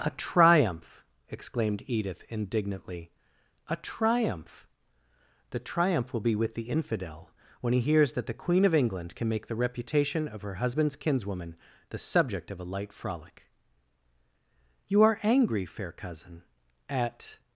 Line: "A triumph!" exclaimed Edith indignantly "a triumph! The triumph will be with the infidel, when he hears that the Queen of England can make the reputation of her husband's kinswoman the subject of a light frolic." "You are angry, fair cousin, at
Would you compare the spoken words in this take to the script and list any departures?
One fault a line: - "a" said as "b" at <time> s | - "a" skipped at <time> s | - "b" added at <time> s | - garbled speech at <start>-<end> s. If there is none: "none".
none